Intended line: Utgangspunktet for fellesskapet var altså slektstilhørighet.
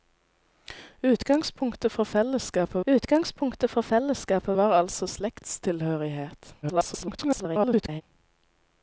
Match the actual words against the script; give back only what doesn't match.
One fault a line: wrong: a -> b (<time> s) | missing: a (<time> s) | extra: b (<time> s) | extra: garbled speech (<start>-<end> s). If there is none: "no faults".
extra: utgangspunktet for fellesskapet (2.9 s)
extra: garbled speech (6.6-8.0 s)